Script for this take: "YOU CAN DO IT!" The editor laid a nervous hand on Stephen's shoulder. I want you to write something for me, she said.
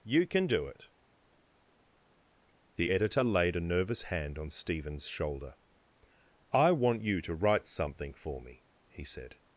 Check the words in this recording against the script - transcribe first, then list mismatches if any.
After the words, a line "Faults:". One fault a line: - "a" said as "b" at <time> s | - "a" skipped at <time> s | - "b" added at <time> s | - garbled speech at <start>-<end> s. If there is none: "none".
"YOU CAN DO IT!" The editor laid a nervous hand on Stephen's shoulder. I want you to write something for me, he said.
Faults:
- "she" said as "he" at 8.9 s